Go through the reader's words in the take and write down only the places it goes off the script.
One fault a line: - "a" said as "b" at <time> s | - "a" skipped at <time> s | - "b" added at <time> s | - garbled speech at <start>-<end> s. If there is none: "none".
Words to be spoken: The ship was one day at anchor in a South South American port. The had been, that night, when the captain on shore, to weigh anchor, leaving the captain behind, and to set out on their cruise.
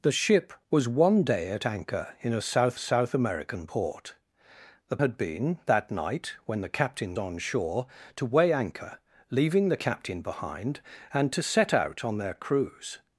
none